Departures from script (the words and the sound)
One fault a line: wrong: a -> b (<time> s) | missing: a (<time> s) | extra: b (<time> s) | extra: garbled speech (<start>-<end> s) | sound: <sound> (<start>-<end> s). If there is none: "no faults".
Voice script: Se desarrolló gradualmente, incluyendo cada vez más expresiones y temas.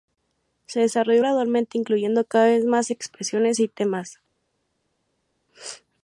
no faults